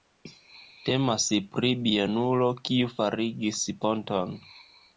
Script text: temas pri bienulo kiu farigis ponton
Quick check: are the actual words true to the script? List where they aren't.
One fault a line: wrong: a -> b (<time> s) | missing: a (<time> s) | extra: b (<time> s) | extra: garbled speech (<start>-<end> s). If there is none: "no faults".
no faults